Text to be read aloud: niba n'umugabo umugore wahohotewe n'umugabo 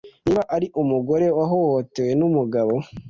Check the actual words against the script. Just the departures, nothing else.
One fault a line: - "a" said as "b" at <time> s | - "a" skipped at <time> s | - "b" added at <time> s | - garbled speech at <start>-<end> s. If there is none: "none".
- "n'umugabo" said as "ari" at 0.6 s